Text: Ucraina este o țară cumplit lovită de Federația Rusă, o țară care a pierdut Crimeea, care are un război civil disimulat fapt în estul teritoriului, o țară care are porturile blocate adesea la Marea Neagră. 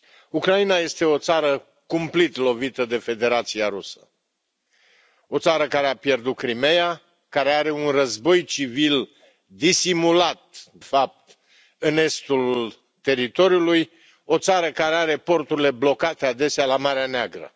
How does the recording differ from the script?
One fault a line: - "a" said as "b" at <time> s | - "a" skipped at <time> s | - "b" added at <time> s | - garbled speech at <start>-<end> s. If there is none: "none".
none